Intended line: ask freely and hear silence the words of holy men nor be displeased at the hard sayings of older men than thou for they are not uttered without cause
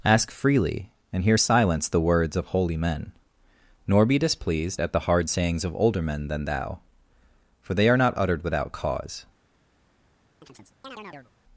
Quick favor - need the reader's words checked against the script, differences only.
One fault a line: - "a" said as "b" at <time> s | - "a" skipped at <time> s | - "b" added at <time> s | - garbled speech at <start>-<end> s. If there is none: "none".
none